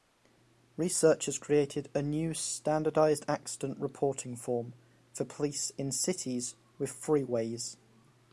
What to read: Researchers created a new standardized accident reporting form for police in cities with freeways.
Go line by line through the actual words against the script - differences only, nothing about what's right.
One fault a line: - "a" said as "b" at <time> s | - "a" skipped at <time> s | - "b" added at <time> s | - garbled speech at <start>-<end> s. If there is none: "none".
none